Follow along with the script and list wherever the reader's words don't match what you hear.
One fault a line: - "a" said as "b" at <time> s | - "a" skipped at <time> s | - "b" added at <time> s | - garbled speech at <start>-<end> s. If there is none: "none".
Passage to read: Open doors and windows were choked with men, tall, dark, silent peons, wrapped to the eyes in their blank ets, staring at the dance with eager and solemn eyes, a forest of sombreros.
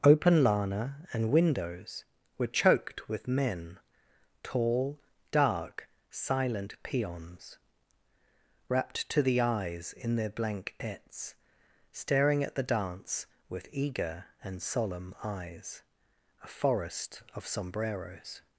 - "doors" said as "lana" at 0.4 s